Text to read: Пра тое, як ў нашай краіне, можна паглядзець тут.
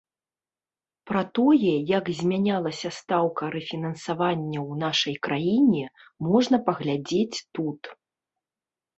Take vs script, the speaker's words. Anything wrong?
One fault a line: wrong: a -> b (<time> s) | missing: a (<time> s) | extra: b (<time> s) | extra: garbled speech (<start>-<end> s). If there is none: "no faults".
extra: змянялася стаўка рэфінансавання (2.2 s)